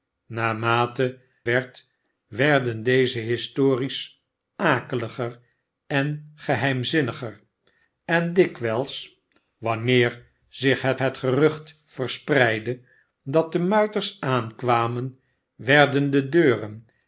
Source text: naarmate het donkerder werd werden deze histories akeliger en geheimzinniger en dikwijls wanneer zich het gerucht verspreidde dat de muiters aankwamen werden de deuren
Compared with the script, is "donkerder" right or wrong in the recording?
wrong